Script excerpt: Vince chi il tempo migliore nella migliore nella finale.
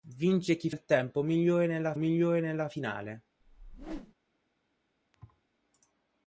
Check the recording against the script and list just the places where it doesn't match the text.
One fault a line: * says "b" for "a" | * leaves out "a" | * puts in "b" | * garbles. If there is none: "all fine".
all fine